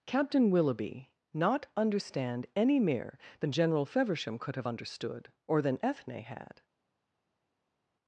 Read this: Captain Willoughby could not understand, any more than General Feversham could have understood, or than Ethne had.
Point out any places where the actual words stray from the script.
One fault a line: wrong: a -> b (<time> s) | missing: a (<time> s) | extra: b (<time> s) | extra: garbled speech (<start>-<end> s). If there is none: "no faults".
missing: could (1.1 s)
wrong: more -> mere (2.8 s)